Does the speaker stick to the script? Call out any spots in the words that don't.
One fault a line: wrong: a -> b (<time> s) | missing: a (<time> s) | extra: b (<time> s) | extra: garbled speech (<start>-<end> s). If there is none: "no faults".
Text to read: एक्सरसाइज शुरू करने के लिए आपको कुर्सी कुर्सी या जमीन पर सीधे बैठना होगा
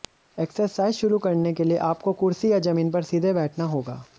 missing: कुर्सी (2.5 s)